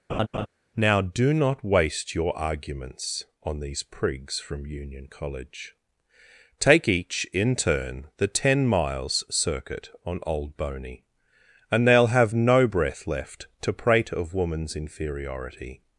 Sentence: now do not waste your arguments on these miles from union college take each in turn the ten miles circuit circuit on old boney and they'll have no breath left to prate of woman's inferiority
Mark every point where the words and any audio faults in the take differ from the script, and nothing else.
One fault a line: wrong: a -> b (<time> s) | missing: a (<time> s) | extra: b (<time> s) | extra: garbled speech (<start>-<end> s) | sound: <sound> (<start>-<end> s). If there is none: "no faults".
sound: laugh (0.1-0.5 s)
wrong: miles -> prigs (3.8 s)
missing: circuit (9.9 s)